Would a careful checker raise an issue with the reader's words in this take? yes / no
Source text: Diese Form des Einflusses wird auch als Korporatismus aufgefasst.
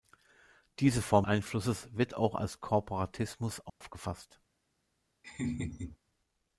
yes